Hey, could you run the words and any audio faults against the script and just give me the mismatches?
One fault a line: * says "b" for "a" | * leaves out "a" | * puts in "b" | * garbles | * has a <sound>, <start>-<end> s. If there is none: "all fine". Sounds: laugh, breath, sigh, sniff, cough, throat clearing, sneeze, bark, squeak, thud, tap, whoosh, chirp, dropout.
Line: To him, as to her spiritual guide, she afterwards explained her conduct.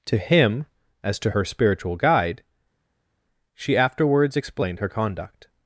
all fine